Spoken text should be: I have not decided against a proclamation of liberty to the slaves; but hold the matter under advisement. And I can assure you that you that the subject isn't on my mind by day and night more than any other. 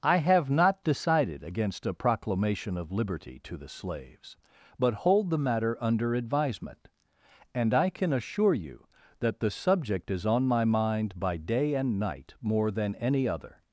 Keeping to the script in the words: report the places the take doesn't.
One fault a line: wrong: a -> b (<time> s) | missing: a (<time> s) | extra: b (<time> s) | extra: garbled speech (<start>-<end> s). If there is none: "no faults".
missing: you that (9.4 s)
wrong: isn't -> is (10.1 s)